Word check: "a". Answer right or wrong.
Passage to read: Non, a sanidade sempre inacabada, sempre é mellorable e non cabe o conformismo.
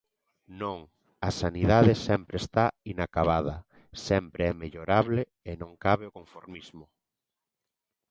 right